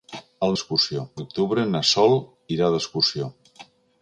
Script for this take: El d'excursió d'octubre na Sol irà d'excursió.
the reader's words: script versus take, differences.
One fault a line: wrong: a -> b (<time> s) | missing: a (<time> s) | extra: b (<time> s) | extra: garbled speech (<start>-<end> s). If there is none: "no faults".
no faults